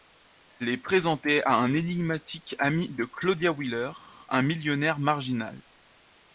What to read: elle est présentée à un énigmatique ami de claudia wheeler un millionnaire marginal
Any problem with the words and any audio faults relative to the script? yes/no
no